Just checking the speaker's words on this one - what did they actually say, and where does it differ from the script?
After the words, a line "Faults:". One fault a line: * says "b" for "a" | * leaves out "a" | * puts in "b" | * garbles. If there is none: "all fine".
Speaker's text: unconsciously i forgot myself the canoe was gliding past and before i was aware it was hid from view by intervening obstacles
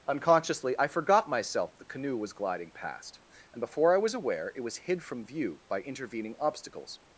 unconsciously i forgot myself the canoe was gliding past and before i was aware it was hid from view by intervening obstacles
Faults:
all fine